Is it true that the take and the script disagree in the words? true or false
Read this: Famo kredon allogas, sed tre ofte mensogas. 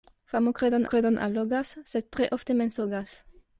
true